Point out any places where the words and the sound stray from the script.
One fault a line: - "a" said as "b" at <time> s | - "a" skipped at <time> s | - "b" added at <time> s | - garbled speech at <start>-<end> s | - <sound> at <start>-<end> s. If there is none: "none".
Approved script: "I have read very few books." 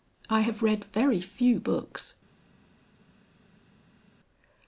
none